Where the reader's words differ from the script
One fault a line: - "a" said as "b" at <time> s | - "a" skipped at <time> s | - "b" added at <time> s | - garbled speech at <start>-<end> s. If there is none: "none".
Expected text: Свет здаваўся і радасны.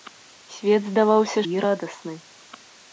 none